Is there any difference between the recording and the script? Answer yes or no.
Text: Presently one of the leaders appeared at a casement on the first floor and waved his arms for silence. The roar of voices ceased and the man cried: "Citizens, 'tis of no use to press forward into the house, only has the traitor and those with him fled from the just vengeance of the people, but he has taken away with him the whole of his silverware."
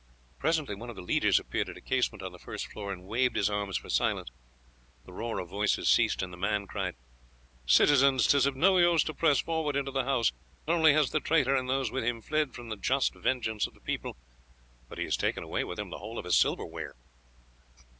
no